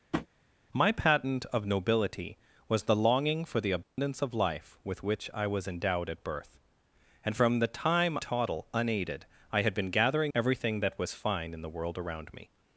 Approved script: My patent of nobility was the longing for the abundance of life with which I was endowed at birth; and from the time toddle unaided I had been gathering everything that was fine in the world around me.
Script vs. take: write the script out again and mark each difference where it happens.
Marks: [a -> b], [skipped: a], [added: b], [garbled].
My patent of nobility was the longing for the abundance of life with which I was endowed at birth; and from the time toddle unaided I had been gathering everything that was fine in the world around me.